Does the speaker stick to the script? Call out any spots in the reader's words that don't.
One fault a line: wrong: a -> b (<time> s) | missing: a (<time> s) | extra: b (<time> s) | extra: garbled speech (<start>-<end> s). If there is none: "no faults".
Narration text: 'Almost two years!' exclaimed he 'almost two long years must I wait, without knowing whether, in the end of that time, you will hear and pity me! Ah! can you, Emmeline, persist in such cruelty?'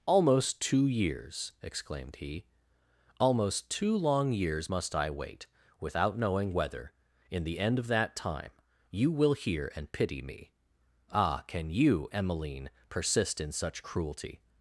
no faults